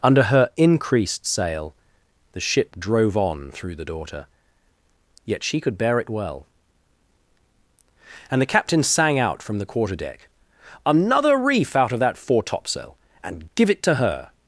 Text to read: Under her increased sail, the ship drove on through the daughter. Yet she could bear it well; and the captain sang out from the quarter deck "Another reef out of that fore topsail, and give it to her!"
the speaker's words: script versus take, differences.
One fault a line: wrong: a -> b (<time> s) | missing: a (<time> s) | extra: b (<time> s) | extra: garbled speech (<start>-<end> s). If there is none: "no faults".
no faults